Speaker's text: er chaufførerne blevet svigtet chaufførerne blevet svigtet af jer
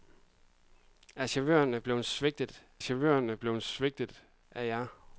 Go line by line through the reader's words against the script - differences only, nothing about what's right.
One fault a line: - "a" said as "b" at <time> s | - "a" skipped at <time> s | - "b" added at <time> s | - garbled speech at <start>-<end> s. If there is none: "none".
none